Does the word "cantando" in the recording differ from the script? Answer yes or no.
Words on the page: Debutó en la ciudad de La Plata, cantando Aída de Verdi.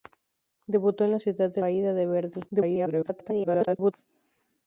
yes